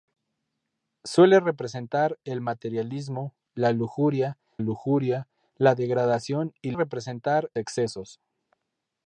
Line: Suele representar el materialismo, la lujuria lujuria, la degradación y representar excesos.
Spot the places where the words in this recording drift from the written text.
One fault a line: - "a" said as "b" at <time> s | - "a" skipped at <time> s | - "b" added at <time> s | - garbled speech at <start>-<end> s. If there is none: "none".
none